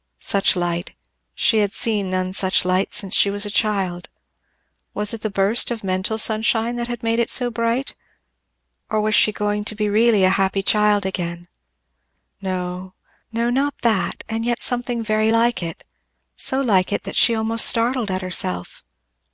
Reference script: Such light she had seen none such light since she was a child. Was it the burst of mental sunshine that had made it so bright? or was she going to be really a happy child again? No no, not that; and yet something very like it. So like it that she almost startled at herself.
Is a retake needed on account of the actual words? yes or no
no